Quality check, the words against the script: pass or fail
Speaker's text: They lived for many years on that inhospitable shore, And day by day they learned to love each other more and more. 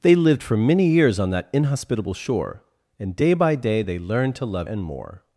fail